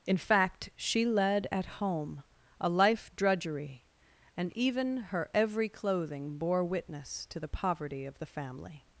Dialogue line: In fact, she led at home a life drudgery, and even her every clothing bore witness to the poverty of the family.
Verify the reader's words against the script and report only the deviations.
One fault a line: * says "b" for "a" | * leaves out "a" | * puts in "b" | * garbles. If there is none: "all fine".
all fine